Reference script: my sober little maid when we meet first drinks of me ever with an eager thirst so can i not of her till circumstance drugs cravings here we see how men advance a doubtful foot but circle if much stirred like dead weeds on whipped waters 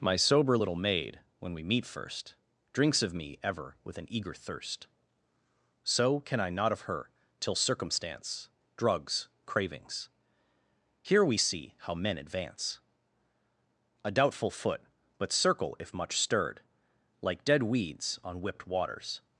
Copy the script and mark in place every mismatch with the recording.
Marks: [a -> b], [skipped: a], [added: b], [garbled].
my sober little maid when we meet first drinks of me ever with an eager thirst so can i not of her till circumstance drugs cravings here we see how men advance a doubtful foot but circle if much stirred like dead weeds on whipped waters